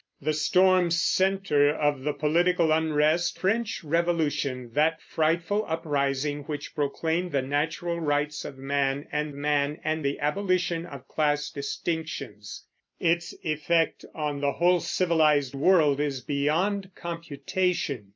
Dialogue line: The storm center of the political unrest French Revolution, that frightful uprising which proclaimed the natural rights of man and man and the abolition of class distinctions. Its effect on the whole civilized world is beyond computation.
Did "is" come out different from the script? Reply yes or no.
no